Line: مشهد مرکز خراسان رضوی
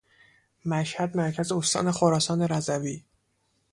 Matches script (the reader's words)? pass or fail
fail